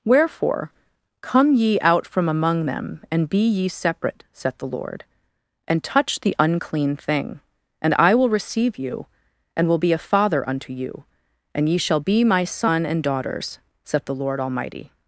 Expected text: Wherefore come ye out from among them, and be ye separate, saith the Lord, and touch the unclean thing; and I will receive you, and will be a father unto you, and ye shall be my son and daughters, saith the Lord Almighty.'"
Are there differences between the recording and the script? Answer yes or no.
no